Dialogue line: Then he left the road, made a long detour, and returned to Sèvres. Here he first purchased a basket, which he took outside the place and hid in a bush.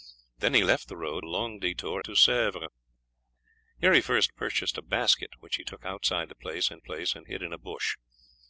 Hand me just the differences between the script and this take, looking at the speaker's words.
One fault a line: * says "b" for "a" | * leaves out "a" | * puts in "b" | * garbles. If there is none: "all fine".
* leaves out "made"
* leaves out "and returned"
* puts in "place and"